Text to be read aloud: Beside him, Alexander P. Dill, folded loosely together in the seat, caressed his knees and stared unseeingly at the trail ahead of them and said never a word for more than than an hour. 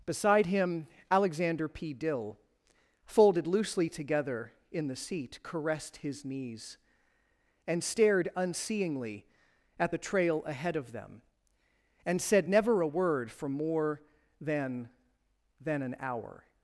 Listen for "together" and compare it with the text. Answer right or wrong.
right